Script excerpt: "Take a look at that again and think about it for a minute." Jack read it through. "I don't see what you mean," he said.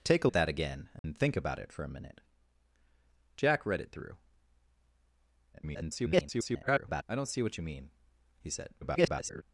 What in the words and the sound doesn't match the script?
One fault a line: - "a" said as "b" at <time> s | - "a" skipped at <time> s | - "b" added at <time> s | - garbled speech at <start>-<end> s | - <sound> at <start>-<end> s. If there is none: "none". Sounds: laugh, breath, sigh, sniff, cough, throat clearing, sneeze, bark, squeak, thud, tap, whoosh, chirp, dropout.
- "look" skipped at 0.3 s
- dropout at 1.0-1.0 s
- garbled speech at 5.5-7.0 s
- garbled speech at 8.8-9.4 s